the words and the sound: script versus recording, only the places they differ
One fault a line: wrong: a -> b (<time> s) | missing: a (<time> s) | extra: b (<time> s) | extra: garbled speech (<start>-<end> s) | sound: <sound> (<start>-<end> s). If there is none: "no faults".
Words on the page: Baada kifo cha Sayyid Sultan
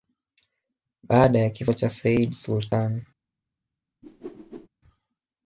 extra: ya (1.4 s)
sound: whoosh (4.0-4.7 s)